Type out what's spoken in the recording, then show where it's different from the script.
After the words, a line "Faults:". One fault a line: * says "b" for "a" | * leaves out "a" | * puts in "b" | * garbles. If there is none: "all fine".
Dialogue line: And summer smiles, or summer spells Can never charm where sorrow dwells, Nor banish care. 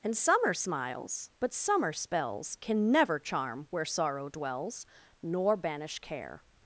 And summer smiles, but summer spells Can never charm where sorrow dwells, Nor banish care.
Faults:
* says "but" for "or"